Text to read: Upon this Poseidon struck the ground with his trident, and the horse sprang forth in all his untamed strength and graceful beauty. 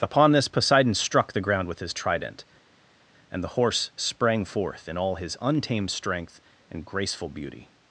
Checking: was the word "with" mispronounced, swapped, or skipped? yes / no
no